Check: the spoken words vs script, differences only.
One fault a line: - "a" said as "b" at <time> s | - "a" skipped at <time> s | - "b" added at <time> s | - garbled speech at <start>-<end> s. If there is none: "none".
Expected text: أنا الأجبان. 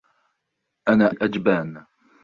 none